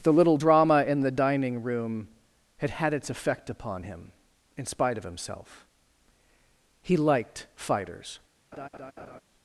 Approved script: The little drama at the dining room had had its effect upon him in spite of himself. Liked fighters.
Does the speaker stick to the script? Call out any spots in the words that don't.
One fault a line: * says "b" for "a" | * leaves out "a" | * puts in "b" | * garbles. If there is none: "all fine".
* says "in" for "at"
* puts in "He"